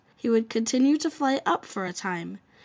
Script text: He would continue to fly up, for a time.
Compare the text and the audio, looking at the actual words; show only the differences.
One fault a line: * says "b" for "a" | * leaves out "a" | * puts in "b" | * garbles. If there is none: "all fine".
all fine